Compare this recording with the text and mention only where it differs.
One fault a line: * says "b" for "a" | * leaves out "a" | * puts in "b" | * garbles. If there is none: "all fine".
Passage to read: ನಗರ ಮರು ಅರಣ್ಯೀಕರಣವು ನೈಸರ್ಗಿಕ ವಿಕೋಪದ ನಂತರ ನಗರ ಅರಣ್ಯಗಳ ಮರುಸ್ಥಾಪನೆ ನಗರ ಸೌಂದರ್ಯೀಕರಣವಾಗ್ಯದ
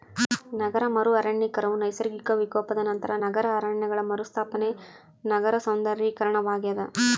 all fine